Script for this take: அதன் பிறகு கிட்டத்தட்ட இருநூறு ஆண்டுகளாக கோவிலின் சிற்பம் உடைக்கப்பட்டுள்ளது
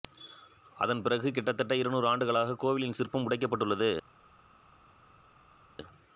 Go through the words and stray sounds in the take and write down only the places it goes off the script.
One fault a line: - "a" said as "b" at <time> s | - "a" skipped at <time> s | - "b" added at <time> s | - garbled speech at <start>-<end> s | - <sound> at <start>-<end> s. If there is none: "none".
none